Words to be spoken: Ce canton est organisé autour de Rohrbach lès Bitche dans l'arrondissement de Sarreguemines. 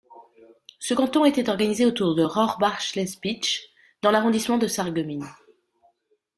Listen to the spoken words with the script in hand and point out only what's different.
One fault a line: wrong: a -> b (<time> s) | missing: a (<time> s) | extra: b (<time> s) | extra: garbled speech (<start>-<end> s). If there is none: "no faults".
wrong: est -> était (1.2 s)